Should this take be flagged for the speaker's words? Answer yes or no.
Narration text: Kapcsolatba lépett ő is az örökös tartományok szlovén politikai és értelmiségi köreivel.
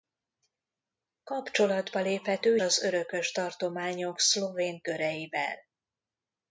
yes